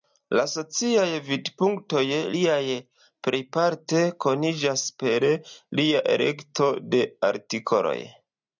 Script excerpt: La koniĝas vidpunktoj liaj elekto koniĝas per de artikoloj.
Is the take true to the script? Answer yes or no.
no